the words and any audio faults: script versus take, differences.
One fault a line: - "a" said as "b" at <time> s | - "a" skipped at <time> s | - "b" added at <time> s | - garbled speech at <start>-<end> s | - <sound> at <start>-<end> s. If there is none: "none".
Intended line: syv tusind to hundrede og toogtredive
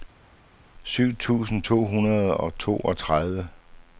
none